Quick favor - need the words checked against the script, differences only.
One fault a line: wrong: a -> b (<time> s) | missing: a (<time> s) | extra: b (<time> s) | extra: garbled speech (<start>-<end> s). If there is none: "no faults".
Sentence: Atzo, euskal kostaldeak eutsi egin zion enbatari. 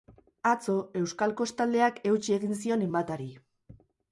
no faults